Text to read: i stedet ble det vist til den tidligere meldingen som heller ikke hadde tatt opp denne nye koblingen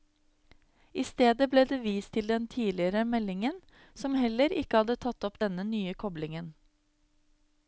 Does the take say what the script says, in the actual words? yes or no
yes